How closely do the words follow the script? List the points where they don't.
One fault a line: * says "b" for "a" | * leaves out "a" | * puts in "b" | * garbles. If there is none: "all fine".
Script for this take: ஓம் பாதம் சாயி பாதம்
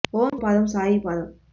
all fine